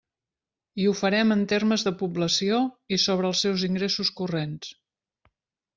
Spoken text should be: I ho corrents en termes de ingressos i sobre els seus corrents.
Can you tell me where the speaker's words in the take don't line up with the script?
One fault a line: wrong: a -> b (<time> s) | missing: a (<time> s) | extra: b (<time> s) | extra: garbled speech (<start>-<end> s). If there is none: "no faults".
wrong: corrents -> farem (1.0 s)
wrong: ingressos -> població (2.0 s)
extra: ingressos (3.7 s)